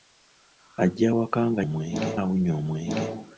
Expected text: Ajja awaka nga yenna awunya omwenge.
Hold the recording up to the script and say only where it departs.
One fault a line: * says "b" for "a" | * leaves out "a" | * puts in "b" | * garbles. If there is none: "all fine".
* says "omwenge" for "yenna"